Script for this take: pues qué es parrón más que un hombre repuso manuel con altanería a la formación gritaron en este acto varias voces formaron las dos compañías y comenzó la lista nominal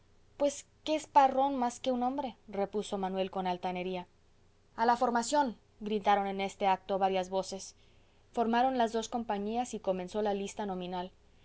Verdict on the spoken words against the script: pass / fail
pass